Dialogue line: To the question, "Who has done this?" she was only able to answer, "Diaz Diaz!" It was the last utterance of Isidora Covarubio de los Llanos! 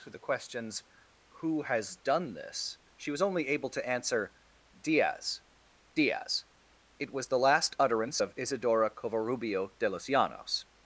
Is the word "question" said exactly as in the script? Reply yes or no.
no